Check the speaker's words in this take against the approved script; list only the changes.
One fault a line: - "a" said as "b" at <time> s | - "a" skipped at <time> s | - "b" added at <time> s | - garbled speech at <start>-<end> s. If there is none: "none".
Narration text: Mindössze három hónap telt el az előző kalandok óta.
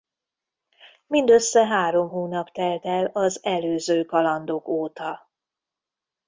none